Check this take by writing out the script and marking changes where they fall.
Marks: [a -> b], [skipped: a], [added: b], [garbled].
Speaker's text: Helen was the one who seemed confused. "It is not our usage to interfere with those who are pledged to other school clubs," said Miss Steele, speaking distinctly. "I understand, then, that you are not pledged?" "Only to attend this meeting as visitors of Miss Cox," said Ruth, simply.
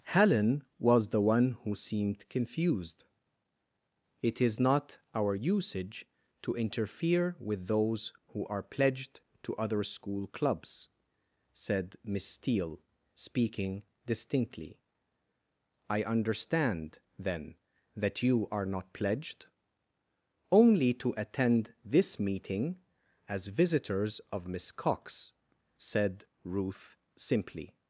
Helen was the one who seemed confused. "It is not our usage to interfere with those who are pledged to other school clubs," said Miss Steele, speaking distinctly. "I understand, then, that you are not pledged?" "Only to attend this meeting as visitors of Miss Cox," said Ruth, simply.